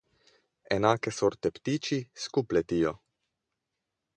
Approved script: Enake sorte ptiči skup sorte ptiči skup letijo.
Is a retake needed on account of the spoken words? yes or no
yes